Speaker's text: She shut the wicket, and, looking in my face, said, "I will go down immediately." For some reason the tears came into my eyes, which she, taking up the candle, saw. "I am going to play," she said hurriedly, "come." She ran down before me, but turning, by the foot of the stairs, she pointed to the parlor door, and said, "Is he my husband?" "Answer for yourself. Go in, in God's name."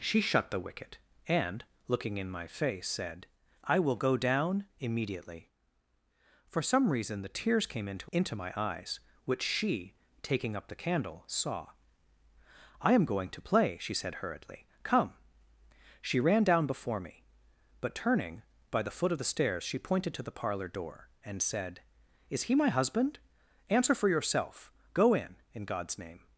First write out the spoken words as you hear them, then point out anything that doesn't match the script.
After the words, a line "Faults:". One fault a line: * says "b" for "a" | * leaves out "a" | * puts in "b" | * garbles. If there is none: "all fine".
She shut the wicket, and, looking in my face, said, "I will go down immediately." For some reason the tears came into into my eyes, which she, taking up the candle, saw. "I am going to play," she said hurriedly, "come." She ran down before me, but turning, by the foot of the stairs, she pointed to the parlor door, and said, "Is he my husband?" "Answer for yourself. Go in, in God's name."
Faults:
* puts in "into"